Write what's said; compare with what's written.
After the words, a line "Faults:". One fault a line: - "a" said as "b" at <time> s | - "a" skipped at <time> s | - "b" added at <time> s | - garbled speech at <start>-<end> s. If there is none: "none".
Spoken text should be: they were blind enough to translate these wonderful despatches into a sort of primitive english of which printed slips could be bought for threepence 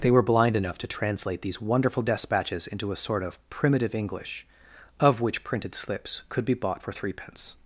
they were blind enough to translate these wonderful despatches into a sort of primitive english of which printed slips could be bought for threepence
Faults:
none